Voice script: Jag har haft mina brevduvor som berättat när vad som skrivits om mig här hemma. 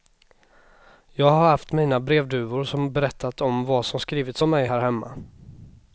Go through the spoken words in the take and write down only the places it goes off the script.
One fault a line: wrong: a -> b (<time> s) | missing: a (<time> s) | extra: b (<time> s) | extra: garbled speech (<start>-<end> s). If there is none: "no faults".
wrong: när -> om (3.4 s)